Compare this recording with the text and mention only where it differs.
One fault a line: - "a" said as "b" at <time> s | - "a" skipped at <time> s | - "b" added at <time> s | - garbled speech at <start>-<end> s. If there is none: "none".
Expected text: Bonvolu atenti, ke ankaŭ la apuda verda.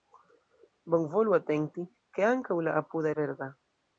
none